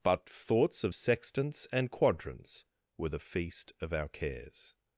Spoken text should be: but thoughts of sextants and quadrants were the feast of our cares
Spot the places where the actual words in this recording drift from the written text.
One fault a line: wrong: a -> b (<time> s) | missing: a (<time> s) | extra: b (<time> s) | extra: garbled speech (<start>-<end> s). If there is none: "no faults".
no faults